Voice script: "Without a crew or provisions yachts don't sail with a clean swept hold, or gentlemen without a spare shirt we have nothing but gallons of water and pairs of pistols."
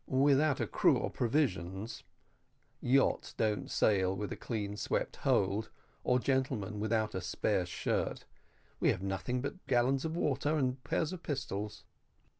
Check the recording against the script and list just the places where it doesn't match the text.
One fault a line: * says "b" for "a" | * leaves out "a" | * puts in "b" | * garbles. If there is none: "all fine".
all fine